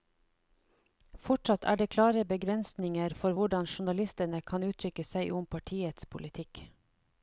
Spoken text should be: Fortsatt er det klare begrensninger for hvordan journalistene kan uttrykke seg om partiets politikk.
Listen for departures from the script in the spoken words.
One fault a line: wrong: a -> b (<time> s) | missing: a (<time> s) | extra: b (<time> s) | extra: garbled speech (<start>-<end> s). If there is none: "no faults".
no faults